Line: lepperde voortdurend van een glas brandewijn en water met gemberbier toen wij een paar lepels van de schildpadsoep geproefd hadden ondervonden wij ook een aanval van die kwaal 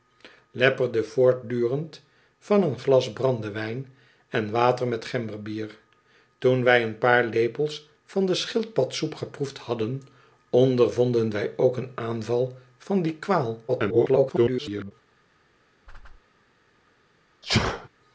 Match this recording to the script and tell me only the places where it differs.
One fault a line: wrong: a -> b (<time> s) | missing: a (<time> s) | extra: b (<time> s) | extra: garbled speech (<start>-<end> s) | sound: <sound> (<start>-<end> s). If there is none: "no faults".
extra: garbled speech (13.7-14.9 s)
sound: whoosh (15.9-16.2 s)
sound: sneeze (17.4-17.9 s)